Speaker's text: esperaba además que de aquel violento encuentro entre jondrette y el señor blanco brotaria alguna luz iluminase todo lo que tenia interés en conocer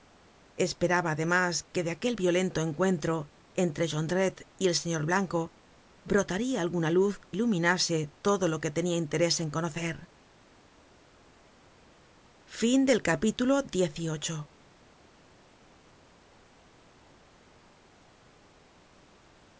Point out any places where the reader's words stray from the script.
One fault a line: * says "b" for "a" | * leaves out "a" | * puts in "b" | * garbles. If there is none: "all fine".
all fine